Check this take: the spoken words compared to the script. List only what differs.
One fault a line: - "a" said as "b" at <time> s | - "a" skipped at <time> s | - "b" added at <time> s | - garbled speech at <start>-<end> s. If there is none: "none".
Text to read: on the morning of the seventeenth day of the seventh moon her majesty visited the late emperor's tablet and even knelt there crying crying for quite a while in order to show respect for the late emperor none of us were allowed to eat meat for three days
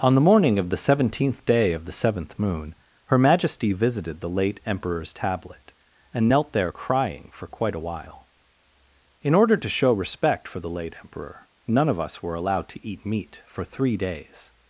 - "even" skipped at 6.3 s
- "crying" skipped at 7.3 s